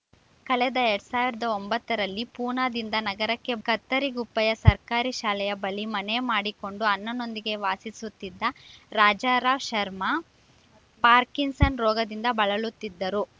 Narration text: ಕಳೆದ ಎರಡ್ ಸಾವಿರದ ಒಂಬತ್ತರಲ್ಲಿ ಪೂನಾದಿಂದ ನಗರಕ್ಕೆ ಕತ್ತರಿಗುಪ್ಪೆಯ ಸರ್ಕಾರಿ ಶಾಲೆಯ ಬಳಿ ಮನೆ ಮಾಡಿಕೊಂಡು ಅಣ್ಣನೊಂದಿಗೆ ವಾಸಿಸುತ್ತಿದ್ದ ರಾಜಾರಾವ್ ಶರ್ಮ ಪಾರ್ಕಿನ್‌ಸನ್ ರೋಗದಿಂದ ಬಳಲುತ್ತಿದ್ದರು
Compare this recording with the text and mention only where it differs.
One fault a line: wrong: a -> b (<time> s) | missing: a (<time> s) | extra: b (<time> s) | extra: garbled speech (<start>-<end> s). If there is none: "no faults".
no faults